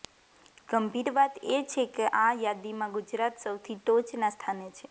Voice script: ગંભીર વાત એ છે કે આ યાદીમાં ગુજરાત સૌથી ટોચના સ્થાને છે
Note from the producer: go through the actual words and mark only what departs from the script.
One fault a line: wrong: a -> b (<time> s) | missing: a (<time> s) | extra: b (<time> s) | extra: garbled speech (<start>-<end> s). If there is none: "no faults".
no faults